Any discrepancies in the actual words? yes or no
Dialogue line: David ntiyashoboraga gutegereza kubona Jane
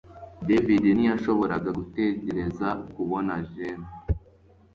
no